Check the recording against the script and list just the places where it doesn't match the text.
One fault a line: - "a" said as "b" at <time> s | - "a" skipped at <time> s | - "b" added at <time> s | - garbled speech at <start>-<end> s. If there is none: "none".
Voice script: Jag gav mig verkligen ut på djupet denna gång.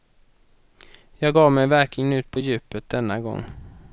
none